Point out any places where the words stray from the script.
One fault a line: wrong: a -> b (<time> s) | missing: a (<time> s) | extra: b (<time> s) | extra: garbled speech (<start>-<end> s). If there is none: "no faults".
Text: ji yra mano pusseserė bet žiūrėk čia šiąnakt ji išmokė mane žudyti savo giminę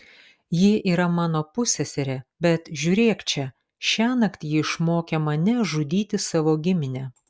no faults